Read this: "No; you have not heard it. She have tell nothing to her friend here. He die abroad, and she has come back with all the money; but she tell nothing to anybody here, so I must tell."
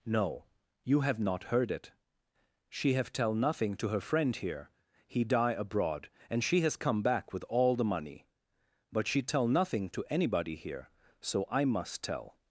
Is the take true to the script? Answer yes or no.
yes